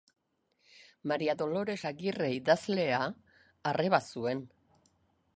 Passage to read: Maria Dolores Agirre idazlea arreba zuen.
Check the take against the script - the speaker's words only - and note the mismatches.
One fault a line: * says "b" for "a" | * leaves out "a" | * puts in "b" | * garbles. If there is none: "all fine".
all fine